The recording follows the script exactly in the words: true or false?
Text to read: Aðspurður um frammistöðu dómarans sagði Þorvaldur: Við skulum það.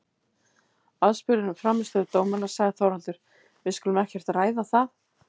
false